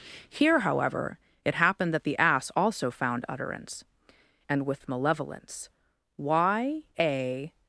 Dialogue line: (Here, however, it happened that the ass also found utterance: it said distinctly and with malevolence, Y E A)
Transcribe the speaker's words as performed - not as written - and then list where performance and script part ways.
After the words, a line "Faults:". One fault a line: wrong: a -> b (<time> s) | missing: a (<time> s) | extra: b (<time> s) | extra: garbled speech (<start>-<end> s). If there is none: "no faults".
(Here, however, it happened that the ass also found utterance: and with malevolence, Y A)
Faults:
missing: it said distinctly (3.8 s)
missing: E (6.8 s)